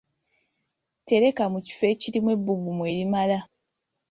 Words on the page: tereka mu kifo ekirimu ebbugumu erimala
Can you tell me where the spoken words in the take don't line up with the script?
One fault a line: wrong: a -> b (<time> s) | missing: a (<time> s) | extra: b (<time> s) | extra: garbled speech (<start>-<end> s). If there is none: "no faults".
no faults